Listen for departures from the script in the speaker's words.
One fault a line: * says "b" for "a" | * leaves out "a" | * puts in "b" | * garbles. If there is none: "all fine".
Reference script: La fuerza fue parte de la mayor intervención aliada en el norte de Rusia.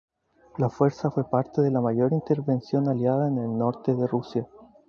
all fine